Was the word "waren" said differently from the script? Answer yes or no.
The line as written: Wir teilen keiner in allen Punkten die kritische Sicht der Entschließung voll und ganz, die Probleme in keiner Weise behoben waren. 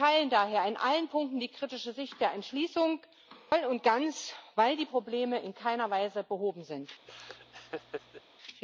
yes